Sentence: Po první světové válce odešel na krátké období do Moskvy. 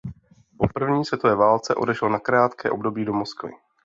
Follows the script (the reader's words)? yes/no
yes